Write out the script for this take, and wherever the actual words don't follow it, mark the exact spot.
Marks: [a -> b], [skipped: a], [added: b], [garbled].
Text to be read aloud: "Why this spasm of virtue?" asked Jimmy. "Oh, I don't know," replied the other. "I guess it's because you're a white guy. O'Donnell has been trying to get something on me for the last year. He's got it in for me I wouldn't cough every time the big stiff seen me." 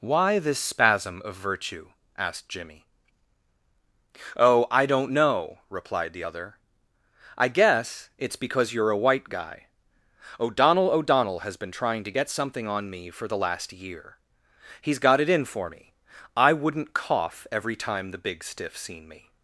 "Why this spasm of virtue?" asked Jimmy. "Oh, I don't know," replied the other. "I guess it's because you're a white guy. O'Donnell [added: O'Donnell] has been trying to get something on me for the last year. He's got it in for me I wouldn't cough every time the big stiff seen me."